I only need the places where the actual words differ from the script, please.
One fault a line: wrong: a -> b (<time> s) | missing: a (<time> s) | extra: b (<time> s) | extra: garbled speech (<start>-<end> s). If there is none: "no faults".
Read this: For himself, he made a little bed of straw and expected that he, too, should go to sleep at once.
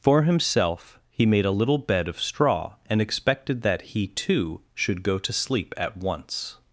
no faults